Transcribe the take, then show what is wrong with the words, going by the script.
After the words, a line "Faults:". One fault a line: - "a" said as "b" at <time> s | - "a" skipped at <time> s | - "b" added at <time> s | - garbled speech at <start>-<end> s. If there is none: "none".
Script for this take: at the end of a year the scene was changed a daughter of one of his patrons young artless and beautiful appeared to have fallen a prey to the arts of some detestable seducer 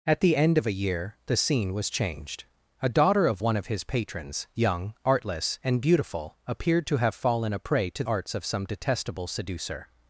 at the end of a year the scene was changed a daughter of one of his patrons young artless and beautiful appeared to have fallen a prey to arts of some detestable seducer
Faults:
- "the" skipped at 8.0 s